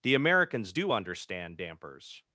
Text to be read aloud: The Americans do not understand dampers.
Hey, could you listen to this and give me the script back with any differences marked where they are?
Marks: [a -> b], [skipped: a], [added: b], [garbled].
The Americans do [skipped: not] understand dampers.